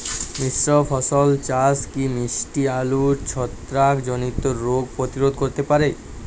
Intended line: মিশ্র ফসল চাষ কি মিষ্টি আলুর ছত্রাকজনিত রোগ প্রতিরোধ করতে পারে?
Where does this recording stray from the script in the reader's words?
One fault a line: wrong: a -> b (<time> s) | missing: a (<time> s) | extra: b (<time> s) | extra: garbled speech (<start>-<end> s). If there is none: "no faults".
no faults